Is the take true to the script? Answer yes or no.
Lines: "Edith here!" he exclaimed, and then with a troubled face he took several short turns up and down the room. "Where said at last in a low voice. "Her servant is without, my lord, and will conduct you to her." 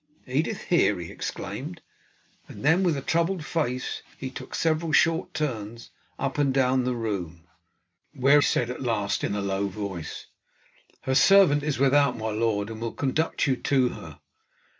yes